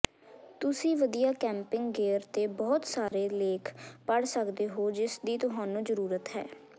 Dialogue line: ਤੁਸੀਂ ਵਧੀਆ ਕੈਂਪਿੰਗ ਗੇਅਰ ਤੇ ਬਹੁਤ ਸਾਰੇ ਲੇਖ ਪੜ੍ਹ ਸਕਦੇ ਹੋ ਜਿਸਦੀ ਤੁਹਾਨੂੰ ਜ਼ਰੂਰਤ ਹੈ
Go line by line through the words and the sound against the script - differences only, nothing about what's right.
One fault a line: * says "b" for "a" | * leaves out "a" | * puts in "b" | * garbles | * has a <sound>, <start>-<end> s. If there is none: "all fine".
* has a dropout, 3.1-3.1 s